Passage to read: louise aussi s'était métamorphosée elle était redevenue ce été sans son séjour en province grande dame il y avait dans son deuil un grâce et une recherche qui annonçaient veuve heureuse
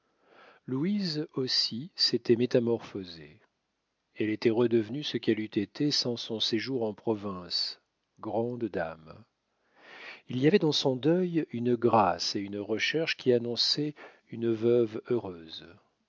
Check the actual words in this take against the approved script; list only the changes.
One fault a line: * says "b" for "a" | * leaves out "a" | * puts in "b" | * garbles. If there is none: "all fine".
* puts in "qu'elle eût"
* says "une" for "un"
* puts in "une"